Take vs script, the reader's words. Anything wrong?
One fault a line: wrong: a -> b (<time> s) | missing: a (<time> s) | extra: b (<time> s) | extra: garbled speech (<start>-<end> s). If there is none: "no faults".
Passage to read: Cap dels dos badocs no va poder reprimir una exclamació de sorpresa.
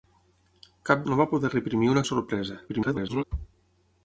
missing: dels dos badocs (1.0 s)
missing: exclamació (2.0 s)
extra: garbled speech (2.7-3.2 s)